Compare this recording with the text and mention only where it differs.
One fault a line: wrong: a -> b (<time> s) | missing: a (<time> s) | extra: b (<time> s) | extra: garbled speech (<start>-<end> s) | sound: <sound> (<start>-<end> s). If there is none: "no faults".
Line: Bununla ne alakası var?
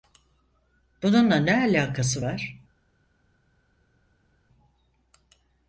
no faults